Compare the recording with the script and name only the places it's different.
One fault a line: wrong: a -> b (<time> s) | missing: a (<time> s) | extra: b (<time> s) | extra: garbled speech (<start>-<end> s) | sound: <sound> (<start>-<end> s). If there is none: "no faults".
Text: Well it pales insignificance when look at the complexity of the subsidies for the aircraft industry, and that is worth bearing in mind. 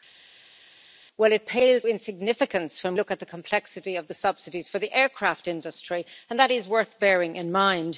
no faults